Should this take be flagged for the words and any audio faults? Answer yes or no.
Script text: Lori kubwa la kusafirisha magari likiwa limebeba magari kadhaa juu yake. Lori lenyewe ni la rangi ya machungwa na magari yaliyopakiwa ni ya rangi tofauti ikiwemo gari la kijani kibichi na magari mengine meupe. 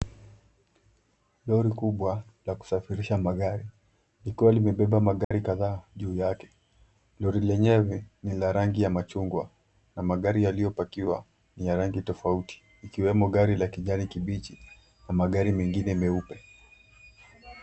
yes